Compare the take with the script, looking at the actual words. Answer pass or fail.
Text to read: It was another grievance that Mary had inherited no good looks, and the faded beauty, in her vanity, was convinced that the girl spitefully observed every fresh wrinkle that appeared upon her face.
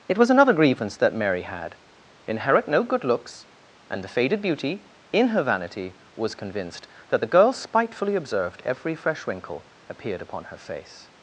fail